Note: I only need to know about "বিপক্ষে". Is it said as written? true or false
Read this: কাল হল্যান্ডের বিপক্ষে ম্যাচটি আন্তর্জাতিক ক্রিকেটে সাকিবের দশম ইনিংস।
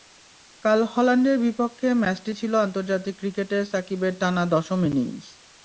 true